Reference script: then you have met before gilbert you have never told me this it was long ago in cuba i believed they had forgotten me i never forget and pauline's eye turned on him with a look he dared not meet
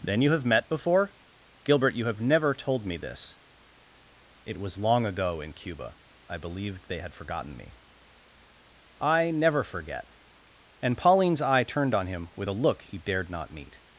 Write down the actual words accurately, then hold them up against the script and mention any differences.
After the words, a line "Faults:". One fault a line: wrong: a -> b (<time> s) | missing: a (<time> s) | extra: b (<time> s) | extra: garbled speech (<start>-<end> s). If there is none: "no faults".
then you have met before gilbert you have never told me this it was long ago in cuba i believed they had forgotten me i never forget and pauline's eye turned on him with a look he dared not meet
Faults:
no faults